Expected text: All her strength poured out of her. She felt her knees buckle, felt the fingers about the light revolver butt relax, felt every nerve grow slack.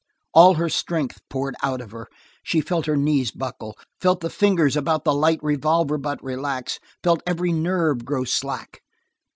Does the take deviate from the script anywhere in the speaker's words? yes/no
no